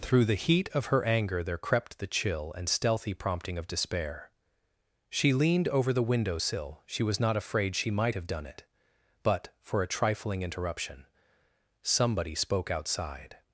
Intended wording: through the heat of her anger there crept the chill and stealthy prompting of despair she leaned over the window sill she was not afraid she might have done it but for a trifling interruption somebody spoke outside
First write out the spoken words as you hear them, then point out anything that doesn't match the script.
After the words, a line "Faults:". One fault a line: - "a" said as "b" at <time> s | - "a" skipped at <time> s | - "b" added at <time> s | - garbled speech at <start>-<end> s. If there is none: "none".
through the heat of her anger there crept the chill and stealthy prompting of despair she leaned over the window sill she was not afraid she might have done it but for a trifling interruption somebody spoke outside
Faults:
none